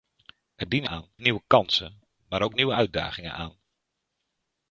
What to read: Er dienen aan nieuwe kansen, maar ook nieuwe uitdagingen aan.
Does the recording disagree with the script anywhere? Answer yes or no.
no